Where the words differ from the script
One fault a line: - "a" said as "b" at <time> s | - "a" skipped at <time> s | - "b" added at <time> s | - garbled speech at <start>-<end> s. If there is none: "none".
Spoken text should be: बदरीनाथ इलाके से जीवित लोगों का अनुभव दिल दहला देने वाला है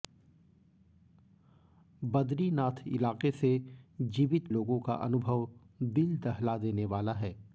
none